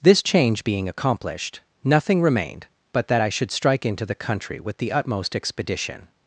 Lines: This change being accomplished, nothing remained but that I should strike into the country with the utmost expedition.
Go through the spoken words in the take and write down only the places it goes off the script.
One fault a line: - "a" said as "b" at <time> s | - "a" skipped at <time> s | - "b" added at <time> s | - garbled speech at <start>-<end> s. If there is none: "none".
none